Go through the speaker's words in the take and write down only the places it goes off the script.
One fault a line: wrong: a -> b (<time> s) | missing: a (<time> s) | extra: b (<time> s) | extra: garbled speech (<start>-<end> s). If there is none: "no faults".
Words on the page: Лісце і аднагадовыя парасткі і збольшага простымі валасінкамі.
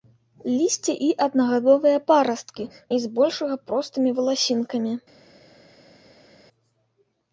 no faults